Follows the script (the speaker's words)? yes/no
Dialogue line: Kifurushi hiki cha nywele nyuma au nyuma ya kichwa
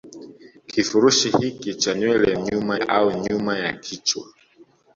yes